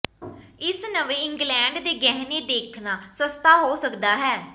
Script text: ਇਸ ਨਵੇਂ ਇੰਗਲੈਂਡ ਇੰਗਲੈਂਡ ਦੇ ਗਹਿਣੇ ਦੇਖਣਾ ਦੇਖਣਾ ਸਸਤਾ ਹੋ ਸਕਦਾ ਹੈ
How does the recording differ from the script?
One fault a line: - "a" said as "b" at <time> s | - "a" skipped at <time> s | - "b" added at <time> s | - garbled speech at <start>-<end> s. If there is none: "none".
- "ਇੰਗਲੈਂਡ" skipped at 1.8 s
- "ਦੇਖਣਾ" skipped at 3.0 s